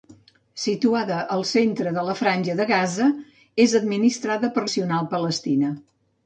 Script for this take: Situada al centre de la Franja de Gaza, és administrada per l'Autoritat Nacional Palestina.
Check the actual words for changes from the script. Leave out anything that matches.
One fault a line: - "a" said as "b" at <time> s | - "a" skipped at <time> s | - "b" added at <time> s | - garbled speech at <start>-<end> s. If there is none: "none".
- "l'Autoritat" skipped at 4.7 s